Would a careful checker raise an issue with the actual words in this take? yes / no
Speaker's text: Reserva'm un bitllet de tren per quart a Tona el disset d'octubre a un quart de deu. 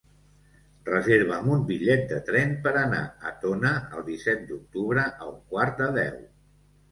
yes